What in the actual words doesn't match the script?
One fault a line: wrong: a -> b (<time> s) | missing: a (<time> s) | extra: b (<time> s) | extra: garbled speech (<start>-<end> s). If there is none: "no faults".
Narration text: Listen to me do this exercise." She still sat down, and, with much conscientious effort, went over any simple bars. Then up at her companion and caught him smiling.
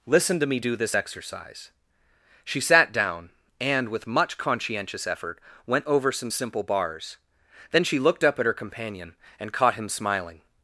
missing: still (2.6 s)
wrong: any -> some (6.1 s)
extra: she looked (7.8 s)